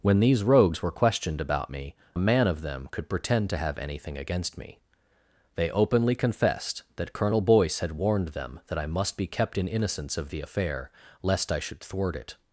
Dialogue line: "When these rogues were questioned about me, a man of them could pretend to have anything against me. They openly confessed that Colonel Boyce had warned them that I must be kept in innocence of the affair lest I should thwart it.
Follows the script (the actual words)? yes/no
yes